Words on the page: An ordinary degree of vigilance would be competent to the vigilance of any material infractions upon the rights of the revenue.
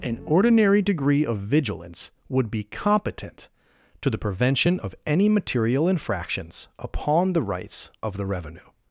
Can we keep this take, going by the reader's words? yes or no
no